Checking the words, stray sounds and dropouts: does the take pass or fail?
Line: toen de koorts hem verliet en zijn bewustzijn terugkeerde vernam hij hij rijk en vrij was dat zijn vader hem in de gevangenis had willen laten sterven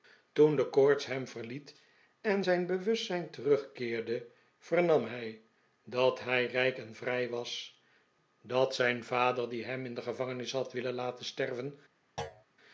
fail